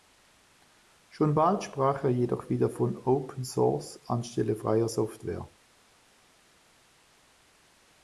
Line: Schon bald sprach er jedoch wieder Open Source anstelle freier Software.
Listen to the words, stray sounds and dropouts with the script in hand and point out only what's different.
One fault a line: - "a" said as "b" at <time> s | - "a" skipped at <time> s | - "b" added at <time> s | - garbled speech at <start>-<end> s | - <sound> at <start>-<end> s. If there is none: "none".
- "von" added at 2.7 s